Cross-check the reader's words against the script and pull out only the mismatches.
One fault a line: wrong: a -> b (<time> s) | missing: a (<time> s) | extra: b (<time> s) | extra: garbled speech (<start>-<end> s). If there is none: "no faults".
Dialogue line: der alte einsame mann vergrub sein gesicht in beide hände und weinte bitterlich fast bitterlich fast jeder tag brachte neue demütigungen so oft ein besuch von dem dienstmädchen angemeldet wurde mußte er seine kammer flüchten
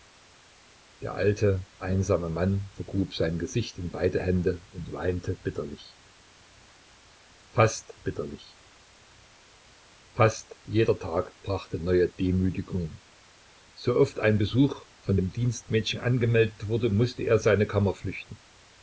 no faults